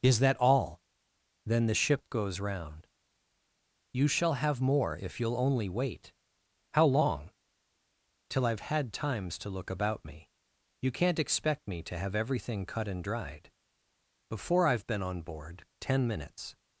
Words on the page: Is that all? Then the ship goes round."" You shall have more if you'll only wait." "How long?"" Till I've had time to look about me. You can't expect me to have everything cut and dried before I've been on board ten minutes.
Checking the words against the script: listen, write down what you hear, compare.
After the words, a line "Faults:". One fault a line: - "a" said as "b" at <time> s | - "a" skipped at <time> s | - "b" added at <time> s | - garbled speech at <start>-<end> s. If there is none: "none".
Is that all? Then the ship goes round."" You shall have more if you'll only wait." "How long?"" Till I've had times to look about me. You can't expect me to have everything cut and dried before I've been on board ten minutes.
Faults:
- "time" said as "times" at 8.9 s